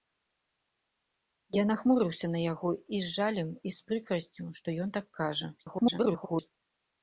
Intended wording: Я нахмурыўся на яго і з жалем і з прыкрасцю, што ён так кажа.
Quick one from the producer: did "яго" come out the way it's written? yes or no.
yes